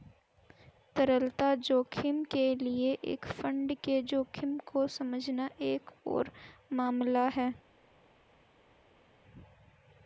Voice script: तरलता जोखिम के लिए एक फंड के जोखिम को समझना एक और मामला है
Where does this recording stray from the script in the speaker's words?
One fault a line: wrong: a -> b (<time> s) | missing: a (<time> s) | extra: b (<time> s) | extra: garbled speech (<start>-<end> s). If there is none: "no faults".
no faults